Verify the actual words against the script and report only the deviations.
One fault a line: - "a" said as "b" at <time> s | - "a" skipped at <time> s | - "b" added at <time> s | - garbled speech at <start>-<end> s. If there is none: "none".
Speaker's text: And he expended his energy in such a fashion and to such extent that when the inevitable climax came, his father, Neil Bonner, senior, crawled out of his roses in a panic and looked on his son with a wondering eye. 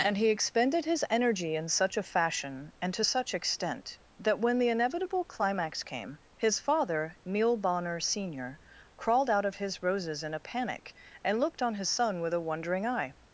none